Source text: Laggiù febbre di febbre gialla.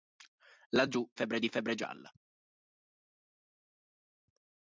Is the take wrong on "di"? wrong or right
right